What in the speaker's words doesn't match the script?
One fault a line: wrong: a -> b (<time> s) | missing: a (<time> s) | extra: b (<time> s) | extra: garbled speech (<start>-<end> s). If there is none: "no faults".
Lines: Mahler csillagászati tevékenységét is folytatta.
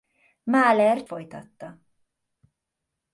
missing: csillagászati tevékenységét is (1.1 s)